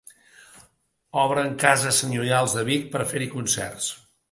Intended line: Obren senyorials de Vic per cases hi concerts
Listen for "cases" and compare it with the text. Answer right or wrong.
wrong